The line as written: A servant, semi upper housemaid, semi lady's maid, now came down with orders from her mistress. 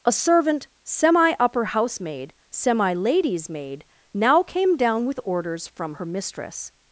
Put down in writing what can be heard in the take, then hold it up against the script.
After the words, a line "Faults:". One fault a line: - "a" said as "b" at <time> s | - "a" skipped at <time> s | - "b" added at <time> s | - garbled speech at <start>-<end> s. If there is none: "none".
A servant, semi upper housemaid, semi lady's maid, now came down with orders from her mistress.
Faults:
none